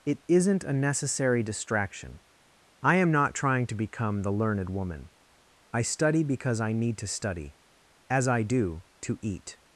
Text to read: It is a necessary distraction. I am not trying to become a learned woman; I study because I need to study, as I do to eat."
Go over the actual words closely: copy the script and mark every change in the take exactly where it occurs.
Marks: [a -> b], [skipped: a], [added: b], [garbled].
It [is -> isn't] a necessary distraction. I am not trying to become [a -> the] learned woman; I study because I need to study, as I do to eat."